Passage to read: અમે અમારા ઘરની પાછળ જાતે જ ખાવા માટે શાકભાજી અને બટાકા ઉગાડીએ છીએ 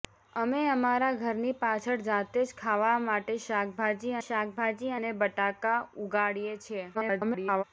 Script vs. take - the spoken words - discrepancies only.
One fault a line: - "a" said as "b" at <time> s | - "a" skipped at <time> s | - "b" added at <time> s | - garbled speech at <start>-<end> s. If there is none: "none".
- "શાકભાજી" added at 4.3 s
- garbled speech at 6.9-7.6 s